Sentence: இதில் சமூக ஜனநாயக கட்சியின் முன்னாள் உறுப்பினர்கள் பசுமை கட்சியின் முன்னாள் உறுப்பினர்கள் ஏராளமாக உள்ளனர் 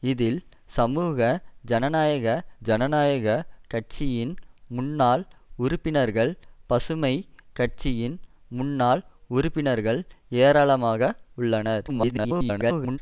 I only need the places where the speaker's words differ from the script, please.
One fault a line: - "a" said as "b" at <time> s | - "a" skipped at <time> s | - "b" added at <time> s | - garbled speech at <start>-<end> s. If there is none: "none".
- "ஜனநாயக" added at 2.6 s
- garbled speech at 11.9-13.0 s